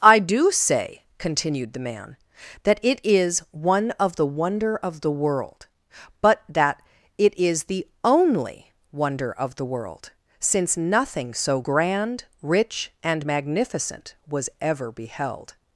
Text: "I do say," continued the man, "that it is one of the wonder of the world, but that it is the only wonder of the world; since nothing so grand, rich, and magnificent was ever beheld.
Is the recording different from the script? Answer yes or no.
no